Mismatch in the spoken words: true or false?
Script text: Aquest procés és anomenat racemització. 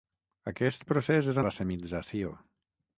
true